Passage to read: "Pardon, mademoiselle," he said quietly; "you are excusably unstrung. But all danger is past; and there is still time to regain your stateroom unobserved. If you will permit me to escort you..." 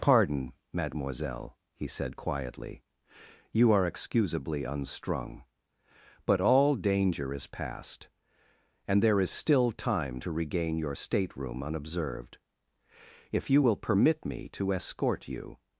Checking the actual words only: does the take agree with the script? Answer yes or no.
yes